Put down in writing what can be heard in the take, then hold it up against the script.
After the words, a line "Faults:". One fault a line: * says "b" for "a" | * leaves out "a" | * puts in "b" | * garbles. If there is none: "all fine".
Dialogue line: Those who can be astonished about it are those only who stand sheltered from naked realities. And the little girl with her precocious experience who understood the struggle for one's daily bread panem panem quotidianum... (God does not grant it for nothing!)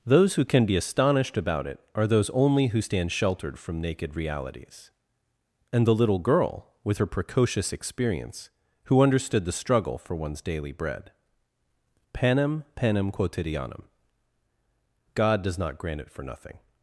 Those who can be astonished about it are those only who stand sheltered from naked realities. And the little girl with her precocious experience who understood the struggle for one's daily bread panem panem quotidianum... (God does not grant it for nothing!)
Faults:
all fine